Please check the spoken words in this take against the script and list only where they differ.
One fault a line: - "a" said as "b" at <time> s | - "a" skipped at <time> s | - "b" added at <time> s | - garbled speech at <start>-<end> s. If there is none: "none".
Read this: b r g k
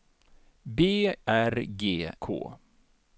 none